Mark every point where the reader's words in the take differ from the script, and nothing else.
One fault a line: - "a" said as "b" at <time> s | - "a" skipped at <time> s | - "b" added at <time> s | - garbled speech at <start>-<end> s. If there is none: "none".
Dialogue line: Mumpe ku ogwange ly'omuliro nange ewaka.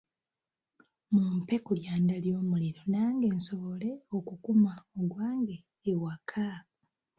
- "ogwange" said as "lyanda" at 1.8 s
- "nsobole okukuma ogwange" added at 3.4 s